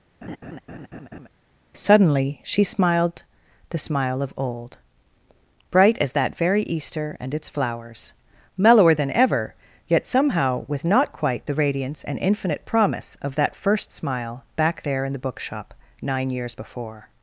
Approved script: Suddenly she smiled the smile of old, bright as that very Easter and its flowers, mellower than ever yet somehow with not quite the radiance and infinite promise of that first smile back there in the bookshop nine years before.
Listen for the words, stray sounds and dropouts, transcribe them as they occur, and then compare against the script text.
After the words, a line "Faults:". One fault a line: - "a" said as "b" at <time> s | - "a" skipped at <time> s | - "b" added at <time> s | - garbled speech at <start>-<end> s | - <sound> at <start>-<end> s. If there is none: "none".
Suddenly she smiled the smile of old, bright as that very Easter and its flowers, mellower than ever yet somehow with not quite the radiance and infinite promise of that first smile back there in the bookshop nine years before.
Faults:
- laugh at 0.2-1.3 s